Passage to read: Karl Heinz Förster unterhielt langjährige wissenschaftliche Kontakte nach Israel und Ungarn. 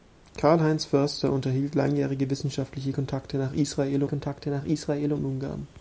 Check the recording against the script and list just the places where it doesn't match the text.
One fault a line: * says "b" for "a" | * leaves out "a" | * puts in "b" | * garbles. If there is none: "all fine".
* puts in "Kontakte nach Israel"